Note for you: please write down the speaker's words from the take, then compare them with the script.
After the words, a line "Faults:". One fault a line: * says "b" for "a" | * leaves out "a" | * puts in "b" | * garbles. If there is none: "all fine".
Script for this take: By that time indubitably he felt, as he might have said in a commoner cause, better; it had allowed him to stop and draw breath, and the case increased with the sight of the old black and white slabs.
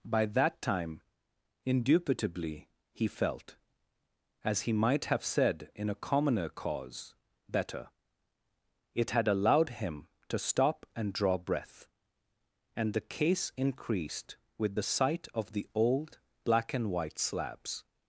By that time indubitably he felt, as he might have said in a commoner cause, better; it had allowed him to stop and draw breath, and the case increased with the sight of the old black and white slabs.
Faults:
all fine